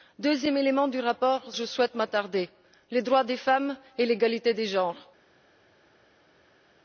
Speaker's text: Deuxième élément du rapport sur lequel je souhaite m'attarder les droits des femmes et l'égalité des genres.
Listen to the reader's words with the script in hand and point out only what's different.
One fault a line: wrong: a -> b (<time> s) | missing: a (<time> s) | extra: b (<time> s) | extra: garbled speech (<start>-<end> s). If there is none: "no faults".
missing: sur lequel (1.5 s)